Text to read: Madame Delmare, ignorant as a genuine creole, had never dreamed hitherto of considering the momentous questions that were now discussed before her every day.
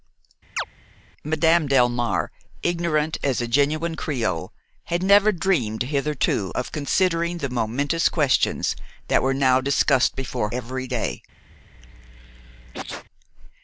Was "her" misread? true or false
true